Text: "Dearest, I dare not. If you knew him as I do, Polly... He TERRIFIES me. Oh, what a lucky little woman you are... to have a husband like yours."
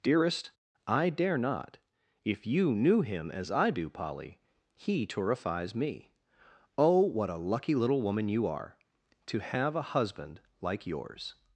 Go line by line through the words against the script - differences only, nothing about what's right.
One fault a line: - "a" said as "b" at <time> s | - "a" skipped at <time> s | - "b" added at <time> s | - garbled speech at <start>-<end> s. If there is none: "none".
none